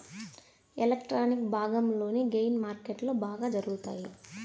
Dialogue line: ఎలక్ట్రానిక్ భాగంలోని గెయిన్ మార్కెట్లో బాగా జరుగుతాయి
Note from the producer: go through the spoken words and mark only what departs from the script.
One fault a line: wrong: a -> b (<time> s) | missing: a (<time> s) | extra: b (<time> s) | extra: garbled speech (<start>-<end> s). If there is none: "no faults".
no faults